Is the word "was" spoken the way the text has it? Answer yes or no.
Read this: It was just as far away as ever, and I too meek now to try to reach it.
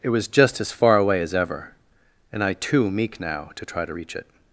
yes